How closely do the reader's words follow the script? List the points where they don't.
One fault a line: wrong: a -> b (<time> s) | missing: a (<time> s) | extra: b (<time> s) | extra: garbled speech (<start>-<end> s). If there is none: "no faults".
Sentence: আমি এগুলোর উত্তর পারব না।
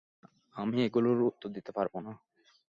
extra: দিতে (1.6 s)